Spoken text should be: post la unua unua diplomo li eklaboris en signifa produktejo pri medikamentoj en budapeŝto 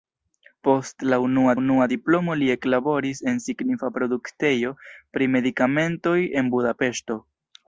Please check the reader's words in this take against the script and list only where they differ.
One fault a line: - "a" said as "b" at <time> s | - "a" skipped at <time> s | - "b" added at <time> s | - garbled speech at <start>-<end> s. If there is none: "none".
none